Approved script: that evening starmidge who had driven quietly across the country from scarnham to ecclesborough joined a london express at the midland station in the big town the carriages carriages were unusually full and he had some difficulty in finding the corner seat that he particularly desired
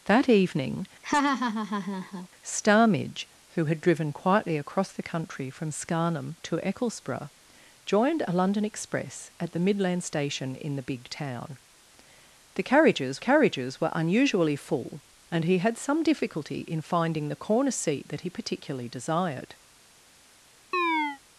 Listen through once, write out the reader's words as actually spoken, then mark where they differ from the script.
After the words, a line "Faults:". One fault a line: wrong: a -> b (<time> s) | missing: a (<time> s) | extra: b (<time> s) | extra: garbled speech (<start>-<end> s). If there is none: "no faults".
that evening starmidge who had driven quietly across the country from scarnham to ecclesborough joined a london express at the midland station in the big town the carriages carriages were unusually full and he had some difficulty in finding the corner seat that he particularly desired
Faults:
no faults